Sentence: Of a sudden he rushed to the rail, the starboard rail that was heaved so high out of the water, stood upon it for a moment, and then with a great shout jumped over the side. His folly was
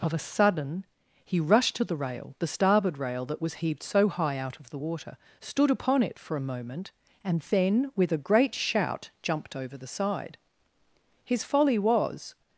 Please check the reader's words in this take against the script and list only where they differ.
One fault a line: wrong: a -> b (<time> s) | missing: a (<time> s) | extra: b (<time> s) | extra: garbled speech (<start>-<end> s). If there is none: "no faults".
no faults